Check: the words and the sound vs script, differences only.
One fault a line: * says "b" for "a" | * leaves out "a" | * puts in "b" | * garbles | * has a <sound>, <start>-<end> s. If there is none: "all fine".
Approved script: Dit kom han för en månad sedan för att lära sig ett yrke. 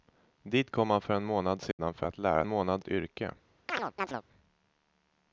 * has a dropout, 1.7-1.8 s
* says "månad" for "sig"
* has a chirp, 3.7-4.2 s